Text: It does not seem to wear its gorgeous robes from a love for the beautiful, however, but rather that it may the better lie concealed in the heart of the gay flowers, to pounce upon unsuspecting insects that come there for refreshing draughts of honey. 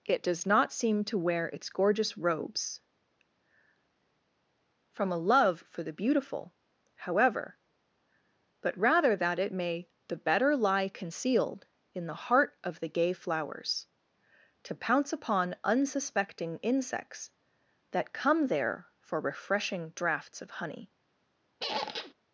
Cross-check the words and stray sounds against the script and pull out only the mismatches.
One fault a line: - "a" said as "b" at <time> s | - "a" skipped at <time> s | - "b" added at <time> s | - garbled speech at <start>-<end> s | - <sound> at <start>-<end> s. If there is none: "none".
- squeak at 21.6-22.1 s